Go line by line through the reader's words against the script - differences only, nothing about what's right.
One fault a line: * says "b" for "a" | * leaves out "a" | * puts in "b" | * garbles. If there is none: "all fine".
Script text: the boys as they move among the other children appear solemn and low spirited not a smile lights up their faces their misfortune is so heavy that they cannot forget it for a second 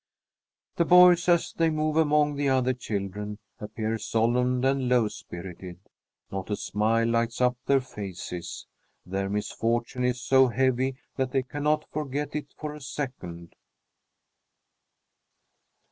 all fine